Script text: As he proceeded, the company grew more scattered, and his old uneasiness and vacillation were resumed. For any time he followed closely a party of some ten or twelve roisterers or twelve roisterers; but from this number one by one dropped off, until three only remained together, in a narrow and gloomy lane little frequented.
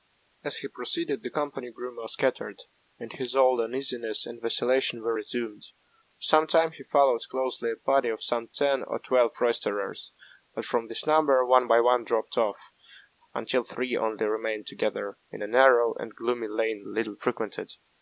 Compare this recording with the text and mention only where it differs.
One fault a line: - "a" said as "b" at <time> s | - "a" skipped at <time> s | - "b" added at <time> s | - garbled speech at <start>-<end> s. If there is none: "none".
- "any" said as "some" at 6.2 s
- "or twelve roisterers" skipped at 10.1 s